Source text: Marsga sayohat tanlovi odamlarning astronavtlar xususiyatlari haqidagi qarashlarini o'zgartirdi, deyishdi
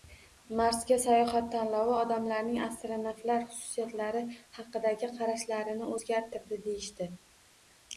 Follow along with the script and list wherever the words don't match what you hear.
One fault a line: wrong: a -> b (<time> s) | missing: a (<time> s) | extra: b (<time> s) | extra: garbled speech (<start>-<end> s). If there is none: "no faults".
no faults